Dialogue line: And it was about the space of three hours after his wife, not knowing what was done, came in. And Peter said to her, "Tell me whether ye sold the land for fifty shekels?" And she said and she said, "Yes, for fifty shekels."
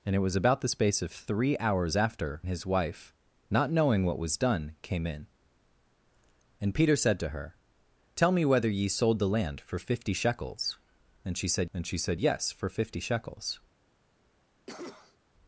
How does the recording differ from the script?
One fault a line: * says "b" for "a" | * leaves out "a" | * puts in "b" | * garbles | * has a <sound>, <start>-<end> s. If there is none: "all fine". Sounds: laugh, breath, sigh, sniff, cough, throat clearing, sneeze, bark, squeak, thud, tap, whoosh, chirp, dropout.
* has a cough, 14.7-15.2 s